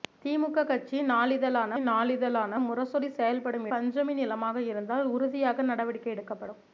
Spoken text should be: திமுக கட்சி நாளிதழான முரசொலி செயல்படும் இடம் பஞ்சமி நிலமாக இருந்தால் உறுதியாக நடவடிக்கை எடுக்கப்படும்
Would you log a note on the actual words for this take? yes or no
yes